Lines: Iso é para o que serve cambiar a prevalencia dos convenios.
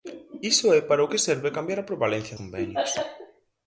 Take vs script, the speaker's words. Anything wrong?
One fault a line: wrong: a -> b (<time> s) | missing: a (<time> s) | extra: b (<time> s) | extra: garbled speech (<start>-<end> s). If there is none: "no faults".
missing: dos (2.4 s)